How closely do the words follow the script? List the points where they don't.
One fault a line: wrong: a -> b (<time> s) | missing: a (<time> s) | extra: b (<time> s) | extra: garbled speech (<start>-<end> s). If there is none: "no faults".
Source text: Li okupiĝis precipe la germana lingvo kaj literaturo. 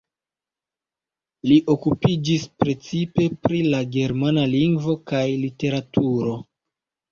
extra: pri (3.5 s)